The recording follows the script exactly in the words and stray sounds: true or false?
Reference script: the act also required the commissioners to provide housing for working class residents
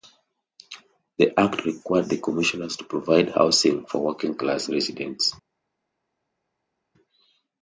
false